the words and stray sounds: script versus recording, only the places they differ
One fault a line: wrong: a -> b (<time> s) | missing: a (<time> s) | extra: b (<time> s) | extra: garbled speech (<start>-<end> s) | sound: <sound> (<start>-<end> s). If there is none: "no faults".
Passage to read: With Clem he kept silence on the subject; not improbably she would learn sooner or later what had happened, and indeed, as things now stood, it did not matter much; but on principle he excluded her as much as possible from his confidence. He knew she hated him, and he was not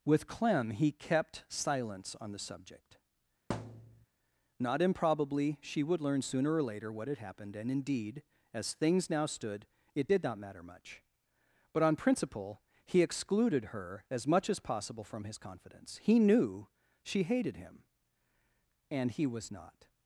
sound: thud (3.5-4.1 s)